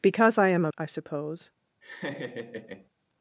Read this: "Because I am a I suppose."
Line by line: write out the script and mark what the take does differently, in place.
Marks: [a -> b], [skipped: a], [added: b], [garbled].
"Because I am a I suppose."